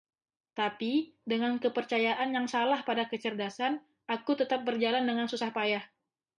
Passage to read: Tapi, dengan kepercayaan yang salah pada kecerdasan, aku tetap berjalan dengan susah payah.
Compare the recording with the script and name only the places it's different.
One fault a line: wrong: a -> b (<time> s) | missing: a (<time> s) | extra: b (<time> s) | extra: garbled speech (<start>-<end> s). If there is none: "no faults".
no faults